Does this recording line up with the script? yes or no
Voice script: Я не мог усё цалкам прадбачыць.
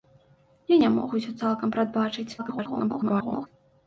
no